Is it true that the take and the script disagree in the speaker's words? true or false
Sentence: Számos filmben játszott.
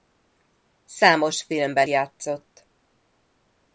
false